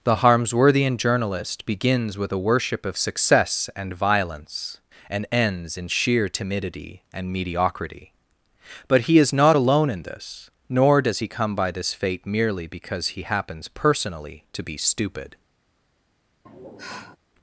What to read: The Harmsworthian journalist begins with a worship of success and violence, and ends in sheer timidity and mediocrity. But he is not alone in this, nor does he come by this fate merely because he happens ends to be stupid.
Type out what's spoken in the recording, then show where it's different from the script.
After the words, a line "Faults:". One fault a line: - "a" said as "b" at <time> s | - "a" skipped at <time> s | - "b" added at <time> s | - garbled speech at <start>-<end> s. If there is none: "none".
The Harmsworthian journalist begins with a worship of success and violence, and ends in sheer timidity and mediocrity. But he is not alone in this, nor does he come by this fate merely because he happens personally to be stupid.
Faults:
- "ends" said as "personally" at 13.7 s